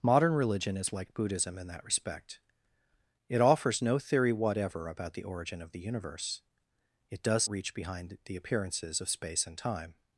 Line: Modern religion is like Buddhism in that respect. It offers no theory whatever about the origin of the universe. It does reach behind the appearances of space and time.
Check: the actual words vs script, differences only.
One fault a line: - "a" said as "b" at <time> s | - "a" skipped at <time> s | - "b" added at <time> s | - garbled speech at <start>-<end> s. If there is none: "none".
none